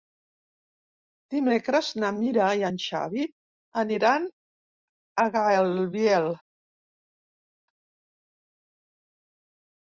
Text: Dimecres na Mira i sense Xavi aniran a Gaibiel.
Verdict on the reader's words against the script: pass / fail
fail